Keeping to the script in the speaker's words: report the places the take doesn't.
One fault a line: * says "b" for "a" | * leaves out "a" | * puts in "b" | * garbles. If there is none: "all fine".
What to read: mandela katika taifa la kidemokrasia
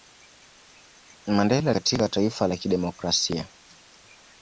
all fine